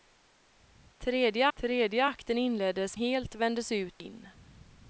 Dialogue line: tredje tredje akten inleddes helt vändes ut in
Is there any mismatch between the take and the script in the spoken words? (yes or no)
no